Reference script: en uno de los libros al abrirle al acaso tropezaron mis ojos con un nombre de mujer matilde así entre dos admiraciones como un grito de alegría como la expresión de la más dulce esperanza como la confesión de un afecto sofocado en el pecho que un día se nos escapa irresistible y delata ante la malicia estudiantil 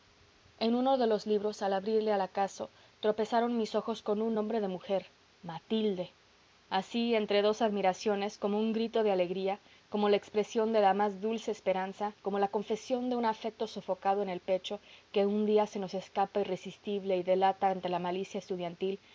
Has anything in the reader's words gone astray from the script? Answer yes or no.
no